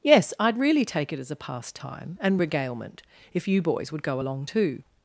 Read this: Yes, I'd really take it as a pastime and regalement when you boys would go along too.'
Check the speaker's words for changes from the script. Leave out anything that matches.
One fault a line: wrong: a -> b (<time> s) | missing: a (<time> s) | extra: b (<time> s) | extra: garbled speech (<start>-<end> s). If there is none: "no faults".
wrong: when -> if (3.3 s)